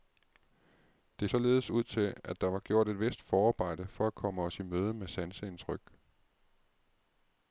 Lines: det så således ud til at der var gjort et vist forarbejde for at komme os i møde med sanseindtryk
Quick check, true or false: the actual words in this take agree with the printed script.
false